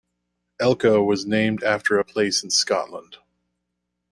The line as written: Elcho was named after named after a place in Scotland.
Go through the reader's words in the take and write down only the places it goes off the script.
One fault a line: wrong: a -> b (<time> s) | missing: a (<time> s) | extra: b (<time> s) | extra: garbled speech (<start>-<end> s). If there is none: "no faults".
missing: named after (2.0 s)